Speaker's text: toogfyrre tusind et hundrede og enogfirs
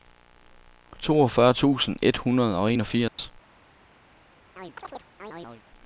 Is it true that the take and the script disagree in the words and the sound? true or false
true